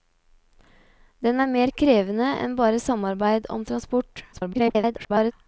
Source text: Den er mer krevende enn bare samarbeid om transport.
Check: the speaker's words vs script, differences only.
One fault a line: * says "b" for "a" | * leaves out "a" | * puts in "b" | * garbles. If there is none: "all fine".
* garbles